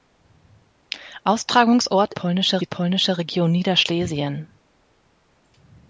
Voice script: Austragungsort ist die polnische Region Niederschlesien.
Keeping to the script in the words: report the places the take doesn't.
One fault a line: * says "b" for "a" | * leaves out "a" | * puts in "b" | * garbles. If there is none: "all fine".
* says "polnische" for "ist"